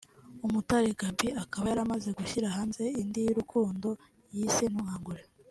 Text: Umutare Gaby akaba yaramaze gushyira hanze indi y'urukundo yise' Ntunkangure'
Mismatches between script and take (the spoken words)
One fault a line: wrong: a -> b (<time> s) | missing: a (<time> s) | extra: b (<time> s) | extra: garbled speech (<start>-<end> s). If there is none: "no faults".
no faults